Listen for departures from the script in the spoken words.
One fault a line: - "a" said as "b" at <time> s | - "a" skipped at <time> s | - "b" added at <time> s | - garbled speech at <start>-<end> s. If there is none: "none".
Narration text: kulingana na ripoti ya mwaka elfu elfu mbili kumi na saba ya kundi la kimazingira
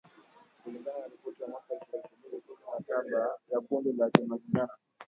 none